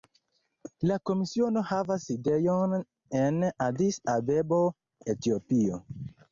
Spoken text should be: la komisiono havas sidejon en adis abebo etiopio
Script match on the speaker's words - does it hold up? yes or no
yes